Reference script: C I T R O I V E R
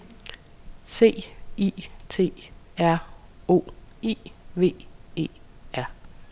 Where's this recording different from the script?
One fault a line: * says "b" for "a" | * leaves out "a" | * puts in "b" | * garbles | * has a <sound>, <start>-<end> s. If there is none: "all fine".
all fine